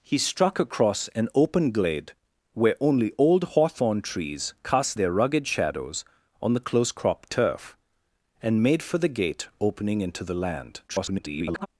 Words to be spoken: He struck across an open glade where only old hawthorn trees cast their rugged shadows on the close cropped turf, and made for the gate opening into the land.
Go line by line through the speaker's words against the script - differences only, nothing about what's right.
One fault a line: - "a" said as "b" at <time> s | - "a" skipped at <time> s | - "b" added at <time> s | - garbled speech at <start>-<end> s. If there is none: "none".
- garbled speech at 10.9-11.7 s